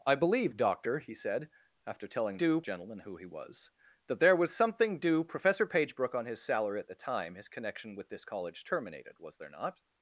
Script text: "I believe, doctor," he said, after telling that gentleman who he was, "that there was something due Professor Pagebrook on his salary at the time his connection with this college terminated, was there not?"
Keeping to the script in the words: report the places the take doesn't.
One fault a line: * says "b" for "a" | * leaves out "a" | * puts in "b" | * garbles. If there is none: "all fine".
* says "due" for "that"